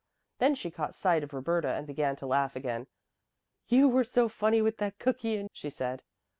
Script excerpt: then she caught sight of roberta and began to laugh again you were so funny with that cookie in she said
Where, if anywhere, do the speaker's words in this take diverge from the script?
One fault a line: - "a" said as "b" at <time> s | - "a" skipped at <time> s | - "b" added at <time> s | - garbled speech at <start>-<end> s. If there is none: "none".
none